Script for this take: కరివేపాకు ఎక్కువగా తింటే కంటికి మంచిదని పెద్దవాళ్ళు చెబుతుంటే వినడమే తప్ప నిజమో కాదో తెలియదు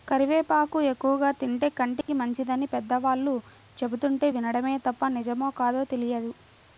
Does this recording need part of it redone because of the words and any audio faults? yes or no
yes